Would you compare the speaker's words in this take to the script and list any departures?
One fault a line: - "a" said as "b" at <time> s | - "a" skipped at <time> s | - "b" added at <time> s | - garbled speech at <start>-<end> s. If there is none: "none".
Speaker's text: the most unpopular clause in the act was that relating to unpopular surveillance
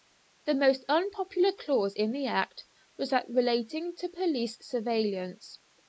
- "unpopular" said as "police" at 4.1 s